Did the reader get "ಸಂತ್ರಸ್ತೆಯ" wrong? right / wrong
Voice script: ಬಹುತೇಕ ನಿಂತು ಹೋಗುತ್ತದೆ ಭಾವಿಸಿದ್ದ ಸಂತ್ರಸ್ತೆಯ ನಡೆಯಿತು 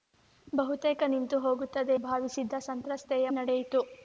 right